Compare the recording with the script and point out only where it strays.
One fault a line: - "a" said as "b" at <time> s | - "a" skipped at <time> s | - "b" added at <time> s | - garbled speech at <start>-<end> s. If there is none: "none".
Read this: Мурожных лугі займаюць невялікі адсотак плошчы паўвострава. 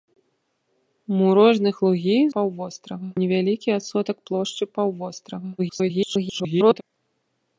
- "займаюць" said as "паўвострава" at 2.4 s
- garbled speech at 5.6-6.8 s